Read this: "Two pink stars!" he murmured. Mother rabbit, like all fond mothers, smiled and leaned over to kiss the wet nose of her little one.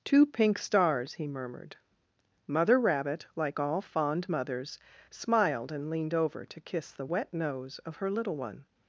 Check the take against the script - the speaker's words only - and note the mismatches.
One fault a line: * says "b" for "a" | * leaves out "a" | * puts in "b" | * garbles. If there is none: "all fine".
all fine